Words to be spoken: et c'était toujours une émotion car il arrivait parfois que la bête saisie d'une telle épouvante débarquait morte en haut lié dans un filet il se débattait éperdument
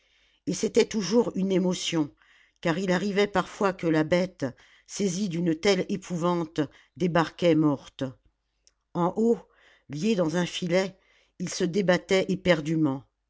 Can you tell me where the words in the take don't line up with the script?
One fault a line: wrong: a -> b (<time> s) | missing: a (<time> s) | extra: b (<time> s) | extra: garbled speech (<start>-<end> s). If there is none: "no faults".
no faults